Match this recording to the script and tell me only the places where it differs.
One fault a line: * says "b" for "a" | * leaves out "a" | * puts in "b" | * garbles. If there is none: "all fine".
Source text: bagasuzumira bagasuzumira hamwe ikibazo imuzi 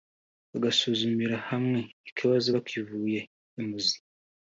* leaves out "bagasuzumira"
* puts in "bakivuye"